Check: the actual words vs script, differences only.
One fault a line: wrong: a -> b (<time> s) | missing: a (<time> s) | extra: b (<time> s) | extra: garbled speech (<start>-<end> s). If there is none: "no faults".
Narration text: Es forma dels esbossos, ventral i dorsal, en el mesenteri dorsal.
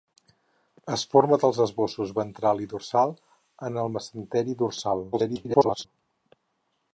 extra: garbled speech (5.1-5.9 s)